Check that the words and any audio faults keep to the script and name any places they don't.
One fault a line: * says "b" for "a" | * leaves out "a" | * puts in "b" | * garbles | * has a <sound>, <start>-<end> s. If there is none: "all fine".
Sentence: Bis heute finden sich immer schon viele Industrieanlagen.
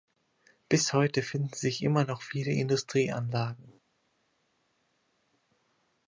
* says "noch" for "schon"